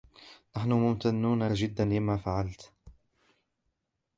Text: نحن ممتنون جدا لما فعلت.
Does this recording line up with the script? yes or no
yes